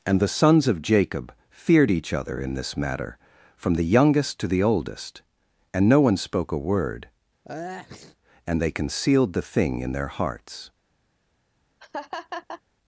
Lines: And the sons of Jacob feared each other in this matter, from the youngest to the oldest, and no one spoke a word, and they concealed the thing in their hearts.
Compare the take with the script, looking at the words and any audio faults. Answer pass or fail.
fail